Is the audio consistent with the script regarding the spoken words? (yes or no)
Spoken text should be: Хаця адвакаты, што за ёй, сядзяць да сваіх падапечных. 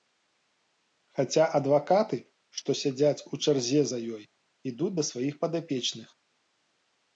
no